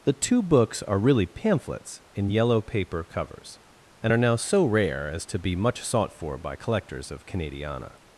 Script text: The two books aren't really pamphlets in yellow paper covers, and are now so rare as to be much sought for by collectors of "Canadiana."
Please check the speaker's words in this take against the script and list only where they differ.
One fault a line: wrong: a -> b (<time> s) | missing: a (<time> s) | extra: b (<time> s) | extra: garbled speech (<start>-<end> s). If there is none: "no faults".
wrong: aren't -> are (0.8 s)